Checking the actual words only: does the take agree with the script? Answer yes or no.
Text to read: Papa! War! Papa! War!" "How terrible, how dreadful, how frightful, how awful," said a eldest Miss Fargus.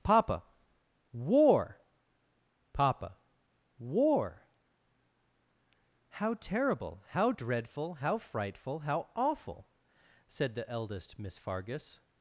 no